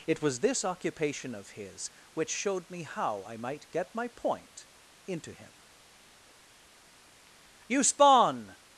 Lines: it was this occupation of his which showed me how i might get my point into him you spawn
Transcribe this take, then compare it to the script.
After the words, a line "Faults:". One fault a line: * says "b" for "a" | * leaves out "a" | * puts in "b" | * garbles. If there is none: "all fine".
it was this occupation of his which showed me how i might get my point into him you spawn
Faults:
all fine